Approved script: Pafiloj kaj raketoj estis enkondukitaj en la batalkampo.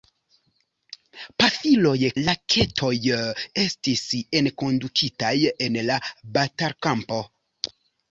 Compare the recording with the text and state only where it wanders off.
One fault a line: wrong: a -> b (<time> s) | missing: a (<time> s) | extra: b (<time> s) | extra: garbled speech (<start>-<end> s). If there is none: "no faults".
missing: kaj (1.9 s)